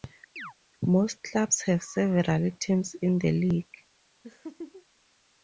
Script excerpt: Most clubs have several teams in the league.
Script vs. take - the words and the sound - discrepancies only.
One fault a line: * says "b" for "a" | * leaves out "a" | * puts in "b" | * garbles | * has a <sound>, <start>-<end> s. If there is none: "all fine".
* has a chirp, 0.4-0.5 s
* has a laugh, 4.2-4.9 s